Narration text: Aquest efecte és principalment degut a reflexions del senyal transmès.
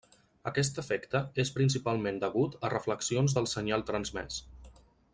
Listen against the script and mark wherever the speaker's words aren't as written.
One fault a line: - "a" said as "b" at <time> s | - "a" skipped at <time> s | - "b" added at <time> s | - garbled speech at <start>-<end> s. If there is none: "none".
none